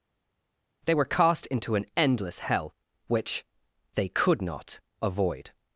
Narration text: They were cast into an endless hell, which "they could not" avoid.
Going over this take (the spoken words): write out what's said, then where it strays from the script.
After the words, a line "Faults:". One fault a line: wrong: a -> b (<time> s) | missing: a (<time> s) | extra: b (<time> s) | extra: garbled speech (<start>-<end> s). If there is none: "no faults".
They were cast into an endless hell, which "they could not" avoid.
Faults:
no faults